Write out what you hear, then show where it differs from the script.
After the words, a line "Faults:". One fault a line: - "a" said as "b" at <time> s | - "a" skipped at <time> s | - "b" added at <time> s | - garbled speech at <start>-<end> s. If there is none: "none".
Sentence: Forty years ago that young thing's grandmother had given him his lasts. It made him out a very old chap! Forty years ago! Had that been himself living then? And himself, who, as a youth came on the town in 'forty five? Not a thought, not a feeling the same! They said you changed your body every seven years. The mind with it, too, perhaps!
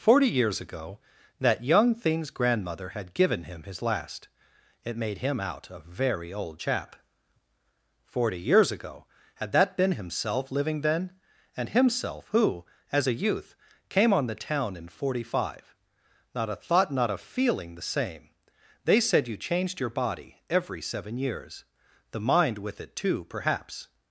Forty years ago that young thing's grandmother had given him his last. It made him out a very old chap! Forty years ago! Had that been himself living then? And himself, who, as a youth came on the town in 'forty five? Not a thought, not a feeling the same! They said you changed your body every seven years. The mind with it, too, perhaps!
Faults:
- "lasts" said as "last" at 3.8 s